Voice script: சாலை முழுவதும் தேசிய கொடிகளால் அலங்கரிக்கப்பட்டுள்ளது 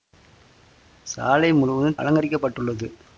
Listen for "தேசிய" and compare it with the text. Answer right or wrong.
wrong